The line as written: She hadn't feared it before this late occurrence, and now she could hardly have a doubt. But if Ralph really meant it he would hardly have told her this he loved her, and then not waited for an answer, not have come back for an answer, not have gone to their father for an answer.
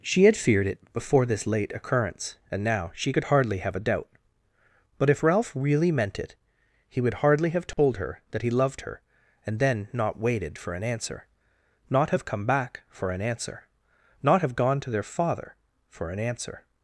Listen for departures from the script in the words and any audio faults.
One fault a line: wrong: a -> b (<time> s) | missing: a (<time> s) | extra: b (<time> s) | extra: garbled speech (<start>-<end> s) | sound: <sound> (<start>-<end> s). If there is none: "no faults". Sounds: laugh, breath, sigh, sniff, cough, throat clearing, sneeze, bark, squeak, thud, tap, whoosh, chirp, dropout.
wrong: hadn't -> had (0.2 s)
sound: dropout (7.7-7.8 s)
wrong: this -> that (8.3 s)